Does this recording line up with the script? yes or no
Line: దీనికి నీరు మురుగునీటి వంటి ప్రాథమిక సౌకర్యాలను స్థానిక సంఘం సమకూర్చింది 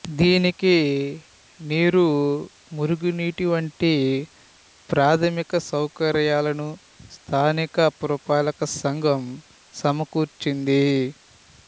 no